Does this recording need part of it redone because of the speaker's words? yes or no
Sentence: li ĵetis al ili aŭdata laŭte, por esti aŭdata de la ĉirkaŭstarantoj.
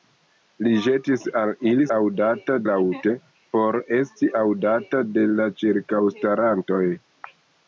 no